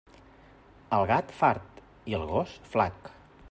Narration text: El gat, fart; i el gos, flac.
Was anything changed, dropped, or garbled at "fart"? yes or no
no